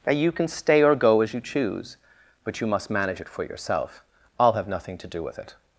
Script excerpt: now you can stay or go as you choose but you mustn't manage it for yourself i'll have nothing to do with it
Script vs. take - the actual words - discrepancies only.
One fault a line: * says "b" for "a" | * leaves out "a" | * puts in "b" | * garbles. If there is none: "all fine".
* says "must" for "mustn't"